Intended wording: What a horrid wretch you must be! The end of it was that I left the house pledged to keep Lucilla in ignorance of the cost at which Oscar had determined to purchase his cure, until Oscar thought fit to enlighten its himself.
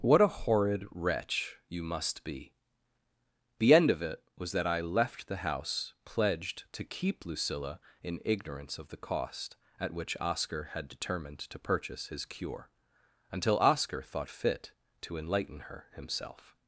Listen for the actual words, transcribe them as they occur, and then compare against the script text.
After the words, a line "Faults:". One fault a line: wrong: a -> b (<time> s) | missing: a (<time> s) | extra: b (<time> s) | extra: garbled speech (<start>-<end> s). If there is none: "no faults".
What a horrid wretch you must be! The end of it was that I left the house pledged to keep Lucilla in ignorance of the cost at which Oscar had determined to purchase his cure, until Oscar thought fit to enlighten her himself.
Faults:
wrong: its -> her (15.7 s)